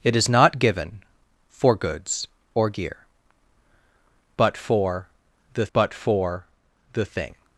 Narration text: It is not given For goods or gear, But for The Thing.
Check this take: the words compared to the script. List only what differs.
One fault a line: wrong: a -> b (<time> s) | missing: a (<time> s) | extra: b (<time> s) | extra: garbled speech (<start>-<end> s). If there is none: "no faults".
extra: But for The (5.7 s)